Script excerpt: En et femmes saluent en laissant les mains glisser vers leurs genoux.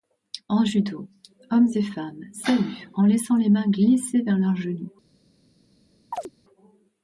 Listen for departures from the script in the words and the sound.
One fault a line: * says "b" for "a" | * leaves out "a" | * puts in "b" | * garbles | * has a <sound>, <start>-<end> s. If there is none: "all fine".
* puts in "judo hommes"
* has a chirp, 6.1-6.3 s